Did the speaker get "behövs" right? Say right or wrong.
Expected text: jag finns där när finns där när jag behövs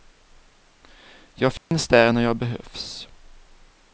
right